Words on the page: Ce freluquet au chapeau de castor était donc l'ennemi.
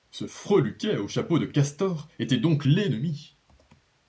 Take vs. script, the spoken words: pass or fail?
pass